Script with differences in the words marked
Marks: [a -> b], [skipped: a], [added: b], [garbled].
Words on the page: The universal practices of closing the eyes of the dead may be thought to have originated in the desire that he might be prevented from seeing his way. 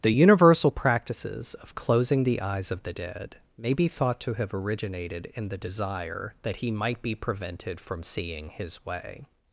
The universal practices of closing the eyes of the dead may be thought to have originated in the desire that he might be prevented from seeing his way.